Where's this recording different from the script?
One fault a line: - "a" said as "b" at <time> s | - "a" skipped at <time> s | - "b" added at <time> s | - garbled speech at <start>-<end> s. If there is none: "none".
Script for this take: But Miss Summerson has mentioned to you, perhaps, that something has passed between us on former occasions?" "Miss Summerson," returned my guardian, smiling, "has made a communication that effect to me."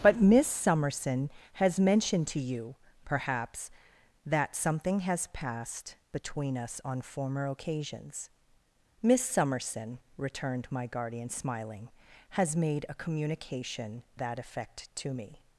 none